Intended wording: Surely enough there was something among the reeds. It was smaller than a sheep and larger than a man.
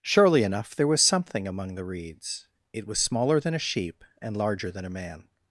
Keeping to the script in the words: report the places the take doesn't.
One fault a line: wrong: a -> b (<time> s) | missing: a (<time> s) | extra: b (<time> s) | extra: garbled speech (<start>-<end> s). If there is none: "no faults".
no faults